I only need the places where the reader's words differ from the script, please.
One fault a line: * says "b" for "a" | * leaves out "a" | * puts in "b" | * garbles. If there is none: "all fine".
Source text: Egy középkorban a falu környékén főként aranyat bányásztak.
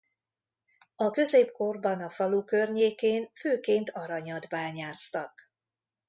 * says "A" for "Egy"